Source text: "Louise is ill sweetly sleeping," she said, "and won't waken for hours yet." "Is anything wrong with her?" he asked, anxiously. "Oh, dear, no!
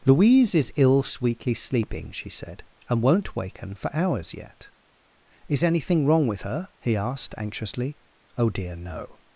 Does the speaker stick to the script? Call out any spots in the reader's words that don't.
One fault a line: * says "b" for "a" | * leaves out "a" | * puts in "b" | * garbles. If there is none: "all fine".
all fine